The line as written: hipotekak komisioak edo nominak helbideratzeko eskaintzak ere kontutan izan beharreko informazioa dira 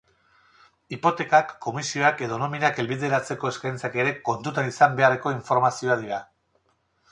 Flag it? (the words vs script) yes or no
no